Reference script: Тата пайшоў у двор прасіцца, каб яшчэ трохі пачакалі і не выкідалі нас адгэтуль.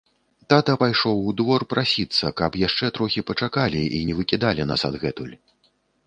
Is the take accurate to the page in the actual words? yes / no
yes